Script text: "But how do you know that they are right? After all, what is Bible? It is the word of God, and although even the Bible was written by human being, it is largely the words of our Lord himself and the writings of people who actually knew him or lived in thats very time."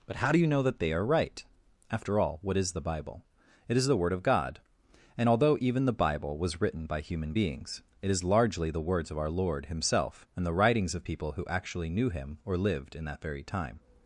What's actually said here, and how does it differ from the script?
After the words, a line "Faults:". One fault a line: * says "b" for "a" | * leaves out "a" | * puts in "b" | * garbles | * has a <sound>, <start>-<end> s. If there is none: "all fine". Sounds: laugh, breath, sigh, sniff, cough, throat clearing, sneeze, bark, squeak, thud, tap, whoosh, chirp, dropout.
"But how do you know that they are right? After all, what is the Bible? It is the word of God, and although even the Bible was written by human beings, it is largely the words of our Lord himself and the writings of people who actually knew him or lived in that very time."
Faults:
* puts in "the"
* says "beings" for "being"
* says "that" for "thats"